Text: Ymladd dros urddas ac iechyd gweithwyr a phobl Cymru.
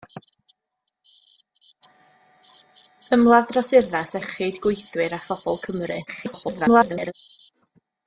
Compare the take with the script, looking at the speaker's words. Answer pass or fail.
fail